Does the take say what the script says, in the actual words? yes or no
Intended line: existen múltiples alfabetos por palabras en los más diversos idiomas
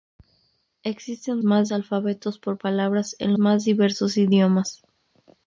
no